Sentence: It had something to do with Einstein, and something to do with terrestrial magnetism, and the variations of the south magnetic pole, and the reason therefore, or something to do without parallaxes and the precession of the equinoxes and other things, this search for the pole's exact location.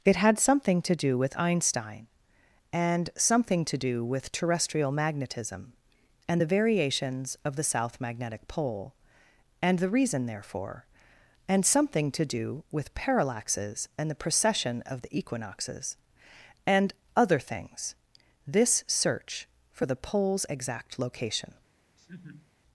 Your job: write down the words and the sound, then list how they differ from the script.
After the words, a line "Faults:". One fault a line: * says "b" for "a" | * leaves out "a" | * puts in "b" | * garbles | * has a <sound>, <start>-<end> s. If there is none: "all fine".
It had something to do with Einstein, and something to do with terrestrial magnetism, and the variations of the south magnetic pole, and the reason therefore, and something to do with parallaxes and the precession of the equinoxes and other things, this search for the pole's exact location.
Faults:
* says "and" for "or"
* says "with" for "without"
* has a laugh, 22.0-22.5 s